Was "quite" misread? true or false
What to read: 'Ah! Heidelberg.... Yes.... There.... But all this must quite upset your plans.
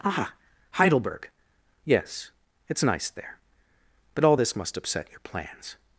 true